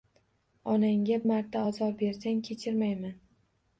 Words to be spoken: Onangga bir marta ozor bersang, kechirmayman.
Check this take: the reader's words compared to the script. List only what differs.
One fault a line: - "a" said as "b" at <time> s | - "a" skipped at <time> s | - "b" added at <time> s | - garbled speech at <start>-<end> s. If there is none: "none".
- "bir" skipped at 1.2 s